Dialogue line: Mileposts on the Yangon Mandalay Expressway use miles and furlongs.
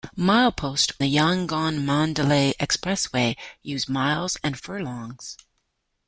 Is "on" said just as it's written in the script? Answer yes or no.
no